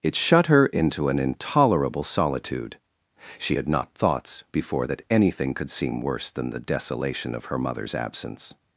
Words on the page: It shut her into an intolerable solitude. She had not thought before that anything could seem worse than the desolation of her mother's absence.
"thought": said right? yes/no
no